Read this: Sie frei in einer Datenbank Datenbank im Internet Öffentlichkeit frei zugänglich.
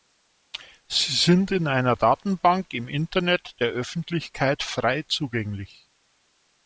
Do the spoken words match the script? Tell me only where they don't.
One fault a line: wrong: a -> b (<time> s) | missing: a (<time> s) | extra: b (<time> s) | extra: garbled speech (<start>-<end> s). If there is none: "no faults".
wrong: frei -> sind (1.1 s)
missing: Datenbank (2.7 s)
extra: der (3.6 s)